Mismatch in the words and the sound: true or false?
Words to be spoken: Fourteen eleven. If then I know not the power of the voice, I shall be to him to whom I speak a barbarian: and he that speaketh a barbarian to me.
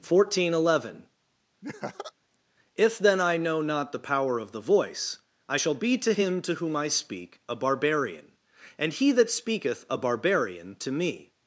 true